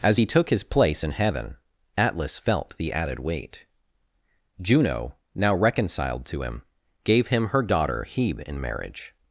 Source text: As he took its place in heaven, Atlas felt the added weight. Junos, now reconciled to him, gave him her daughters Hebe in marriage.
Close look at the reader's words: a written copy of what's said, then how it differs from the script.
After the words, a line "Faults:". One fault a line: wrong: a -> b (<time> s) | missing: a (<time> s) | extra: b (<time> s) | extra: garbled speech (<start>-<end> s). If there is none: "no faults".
As he took his place in heaven, Atlas felt the added weight. Juno, now reconciled to him, gave him her daughter Hebe in marriage.
Faults:
wrong: its -> his (0.5 s)
wrong: Junos -> Juno (4.6 s)
wrong: daughters -> daughter (7.6 s)